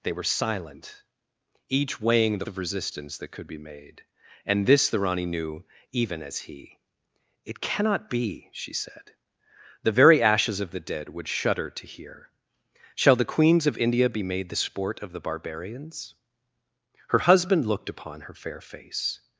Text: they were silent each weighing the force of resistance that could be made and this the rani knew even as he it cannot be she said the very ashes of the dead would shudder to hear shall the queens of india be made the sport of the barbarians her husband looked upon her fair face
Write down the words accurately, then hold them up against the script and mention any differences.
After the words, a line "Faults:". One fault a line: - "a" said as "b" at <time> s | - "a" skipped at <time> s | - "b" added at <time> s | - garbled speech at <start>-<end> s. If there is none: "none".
they were silent each weighing the of resistance that could be made and this the rani knew even as he it cannot be she said the very ashes of the dead would shudder to hear shall the queens of india be made the sport of the barbarians her husband looked upon her fair face
Faults:
- "force" skipped at 2.5 s